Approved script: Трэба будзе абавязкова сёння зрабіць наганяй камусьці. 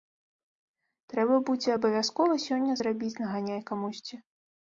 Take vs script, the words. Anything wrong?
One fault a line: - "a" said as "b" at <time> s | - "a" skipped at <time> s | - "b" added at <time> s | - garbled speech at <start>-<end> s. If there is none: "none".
none